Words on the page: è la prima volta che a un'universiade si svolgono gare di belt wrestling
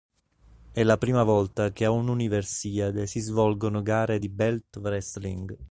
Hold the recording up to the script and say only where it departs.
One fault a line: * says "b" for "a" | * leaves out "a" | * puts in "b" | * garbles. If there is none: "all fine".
all fine